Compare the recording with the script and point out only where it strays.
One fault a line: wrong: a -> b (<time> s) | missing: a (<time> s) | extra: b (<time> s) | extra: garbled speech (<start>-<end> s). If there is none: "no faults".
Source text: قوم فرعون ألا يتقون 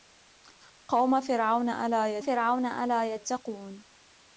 extra: فرعون ألا (2.2 s)